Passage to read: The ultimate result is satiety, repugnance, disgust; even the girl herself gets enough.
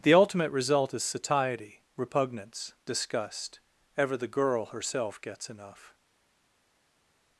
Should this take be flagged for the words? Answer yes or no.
yes